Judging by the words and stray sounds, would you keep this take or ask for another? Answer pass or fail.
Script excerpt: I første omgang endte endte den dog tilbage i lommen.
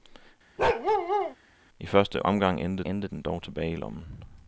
fail